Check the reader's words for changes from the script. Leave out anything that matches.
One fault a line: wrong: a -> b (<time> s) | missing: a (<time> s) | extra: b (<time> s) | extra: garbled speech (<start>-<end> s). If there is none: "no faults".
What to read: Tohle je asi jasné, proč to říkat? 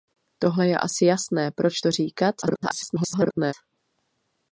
extra: garbled speech (2.4-3.5 s)